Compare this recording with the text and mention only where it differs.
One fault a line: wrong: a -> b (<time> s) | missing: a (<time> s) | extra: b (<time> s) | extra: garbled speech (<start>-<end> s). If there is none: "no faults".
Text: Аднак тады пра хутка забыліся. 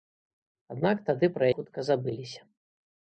no faults